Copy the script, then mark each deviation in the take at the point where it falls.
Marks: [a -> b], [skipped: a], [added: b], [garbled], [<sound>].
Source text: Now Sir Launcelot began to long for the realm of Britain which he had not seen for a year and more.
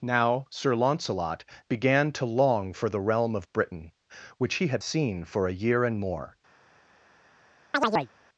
Now Sir Launcelot began to long for the realm of Britain which he had [skipped: not] seen for a year and more. [chirp]